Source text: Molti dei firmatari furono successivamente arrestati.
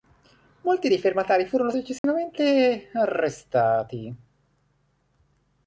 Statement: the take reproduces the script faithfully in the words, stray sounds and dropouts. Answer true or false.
false